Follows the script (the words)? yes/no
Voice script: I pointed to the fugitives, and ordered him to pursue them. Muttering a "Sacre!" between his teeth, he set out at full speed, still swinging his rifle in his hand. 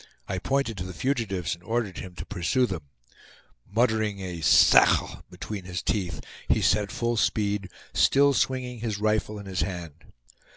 no